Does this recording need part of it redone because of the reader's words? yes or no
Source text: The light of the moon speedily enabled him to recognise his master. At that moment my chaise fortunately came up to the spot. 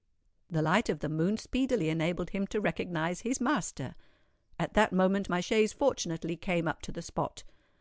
no